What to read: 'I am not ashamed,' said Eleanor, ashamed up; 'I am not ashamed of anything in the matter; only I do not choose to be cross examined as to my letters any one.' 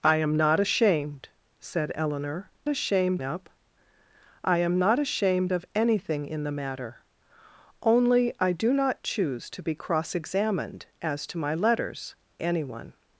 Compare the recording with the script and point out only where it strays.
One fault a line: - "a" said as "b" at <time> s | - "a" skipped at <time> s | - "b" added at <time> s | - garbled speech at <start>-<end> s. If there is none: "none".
none